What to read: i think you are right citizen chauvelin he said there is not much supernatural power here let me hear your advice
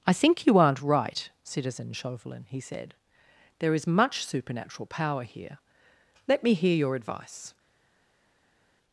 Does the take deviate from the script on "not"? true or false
true